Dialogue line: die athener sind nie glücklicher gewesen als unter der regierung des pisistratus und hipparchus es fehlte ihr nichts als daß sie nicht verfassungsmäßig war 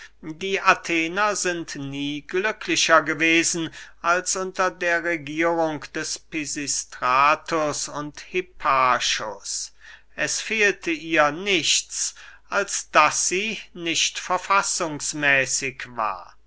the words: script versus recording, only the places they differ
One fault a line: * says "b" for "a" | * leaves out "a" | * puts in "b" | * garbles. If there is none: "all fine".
all fine